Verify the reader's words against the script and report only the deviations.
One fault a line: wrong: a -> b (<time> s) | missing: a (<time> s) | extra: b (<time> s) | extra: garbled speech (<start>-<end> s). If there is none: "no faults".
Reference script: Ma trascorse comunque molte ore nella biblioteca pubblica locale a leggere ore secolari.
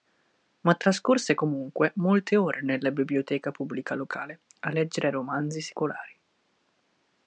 wrong: ore -> romanzi (5.1 s)